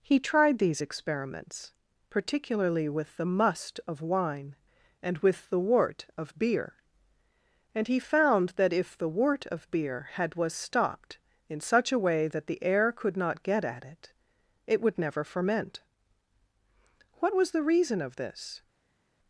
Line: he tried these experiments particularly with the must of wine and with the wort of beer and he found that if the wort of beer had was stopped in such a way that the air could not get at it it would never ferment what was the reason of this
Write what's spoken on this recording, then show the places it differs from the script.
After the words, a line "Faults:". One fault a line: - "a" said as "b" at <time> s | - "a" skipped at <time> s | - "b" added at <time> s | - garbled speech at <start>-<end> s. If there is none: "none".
he tried these experiments particularly with the must of wine and with the wort of beer and he found that if the wort of beer had was stopped in such a way that the air could not get at it it would never ferment what was the reason of this
Faults:
none